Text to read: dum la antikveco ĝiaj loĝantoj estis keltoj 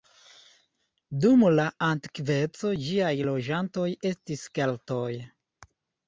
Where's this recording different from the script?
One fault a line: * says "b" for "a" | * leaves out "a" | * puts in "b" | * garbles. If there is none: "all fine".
all fine